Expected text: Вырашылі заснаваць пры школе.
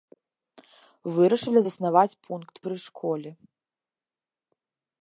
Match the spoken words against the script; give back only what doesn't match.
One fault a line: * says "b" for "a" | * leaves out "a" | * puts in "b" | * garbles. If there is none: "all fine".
* puts in "пункт"